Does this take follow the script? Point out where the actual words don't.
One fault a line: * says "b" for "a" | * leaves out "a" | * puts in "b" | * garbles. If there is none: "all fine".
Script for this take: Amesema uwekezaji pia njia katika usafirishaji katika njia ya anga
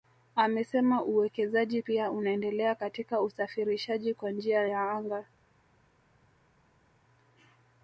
* says "unaendelea" for "njia"
* says "kwa" for "katika"